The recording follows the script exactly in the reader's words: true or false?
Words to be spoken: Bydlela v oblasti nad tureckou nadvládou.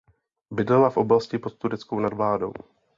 false